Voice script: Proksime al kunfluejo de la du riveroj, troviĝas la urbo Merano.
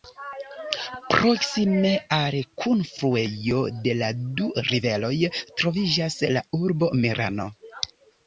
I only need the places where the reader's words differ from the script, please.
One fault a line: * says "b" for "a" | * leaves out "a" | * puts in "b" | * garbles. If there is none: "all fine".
all fine